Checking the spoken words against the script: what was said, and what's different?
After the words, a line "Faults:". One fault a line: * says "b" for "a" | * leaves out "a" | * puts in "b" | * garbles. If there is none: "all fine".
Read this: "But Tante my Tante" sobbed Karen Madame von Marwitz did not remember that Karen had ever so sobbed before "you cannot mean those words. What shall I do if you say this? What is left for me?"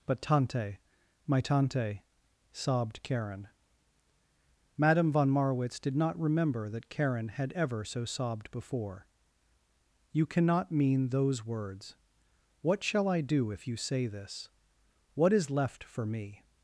"But Tante my Tante" sobbed Karen Madame von Marwitz did not remember that Karen had ever so sobbed before "you cannot mean those words. What shall I do if you say this? What is left for me?"
Faults:
all fine